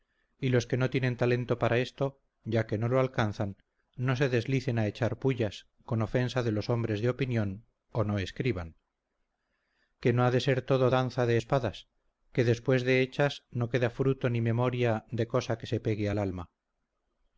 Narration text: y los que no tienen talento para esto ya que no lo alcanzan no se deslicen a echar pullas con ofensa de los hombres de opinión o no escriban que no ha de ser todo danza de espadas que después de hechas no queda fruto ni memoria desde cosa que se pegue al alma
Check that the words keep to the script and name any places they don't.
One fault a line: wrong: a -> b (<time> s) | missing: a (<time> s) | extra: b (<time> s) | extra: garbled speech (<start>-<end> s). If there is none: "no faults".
wrong: desde -> de (15.1 s)